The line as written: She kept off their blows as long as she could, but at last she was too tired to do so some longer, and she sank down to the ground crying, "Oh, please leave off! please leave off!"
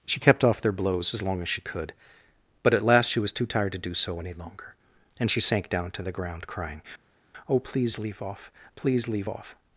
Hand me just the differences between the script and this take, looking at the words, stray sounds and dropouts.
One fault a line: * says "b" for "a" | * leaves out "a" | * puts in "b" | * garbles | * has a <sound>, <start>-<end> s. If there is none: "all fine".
* says "any" for "some"